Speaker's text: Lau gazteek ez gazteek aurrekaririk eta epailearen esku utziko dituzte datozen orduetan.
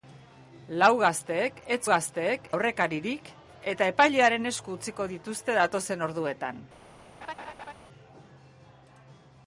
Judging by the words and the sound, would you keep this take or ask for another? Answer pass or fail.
fail